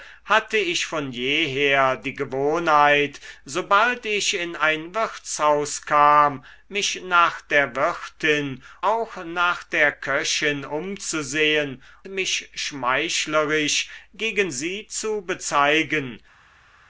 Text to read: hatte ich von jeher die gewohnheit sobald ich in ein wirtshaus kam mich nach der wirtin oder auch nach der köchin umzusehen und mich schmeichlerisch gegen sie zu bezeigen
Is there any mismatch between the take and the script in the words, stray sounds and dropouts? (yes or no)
yes